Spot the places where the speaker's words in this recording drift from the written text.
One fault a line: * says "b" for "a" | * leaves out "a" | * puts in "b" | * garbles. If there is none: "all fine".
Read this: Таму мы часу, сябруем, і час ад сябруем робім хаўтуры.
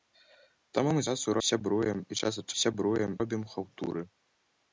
all fine